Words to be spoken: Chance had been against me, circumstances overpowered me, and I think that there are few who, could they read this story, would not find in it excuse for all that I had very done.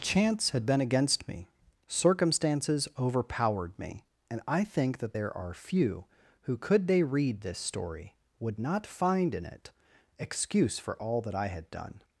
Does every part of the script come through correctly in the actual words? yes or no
no